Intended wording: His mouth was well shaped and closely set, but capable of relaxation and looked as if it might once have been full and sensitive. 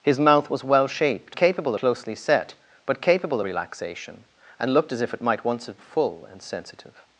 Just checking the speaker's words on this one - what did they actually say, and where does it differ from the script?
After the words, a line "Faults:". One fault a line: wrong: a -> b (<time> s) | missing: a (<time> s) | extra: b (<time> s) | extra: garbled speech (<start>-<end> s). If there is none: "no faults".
His mouth was well shaped capable closely set, but capable relaxation and looked as if it might once have full and sensitive.
Faults:
wrong: and -> capable (1.3 s)
missing: of (3.4 s)
missing: been (5.8 s)